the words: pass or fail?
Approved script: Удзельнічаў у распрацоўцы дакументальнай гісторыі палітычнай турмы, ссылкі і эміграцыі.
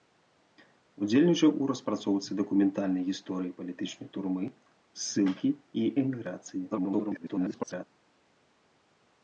fail